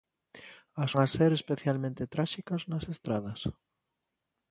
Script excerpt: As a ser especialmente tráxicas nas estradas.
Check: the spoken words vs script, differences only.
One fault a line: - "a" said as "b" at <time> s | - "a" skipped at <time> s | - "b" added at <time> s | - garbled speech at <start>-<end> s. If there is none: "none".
none